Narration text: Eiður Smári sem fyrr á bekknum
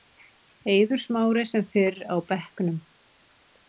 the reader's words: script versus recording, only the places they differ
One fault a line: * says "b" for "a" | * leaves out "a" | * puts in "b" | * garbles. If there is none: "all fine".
all fine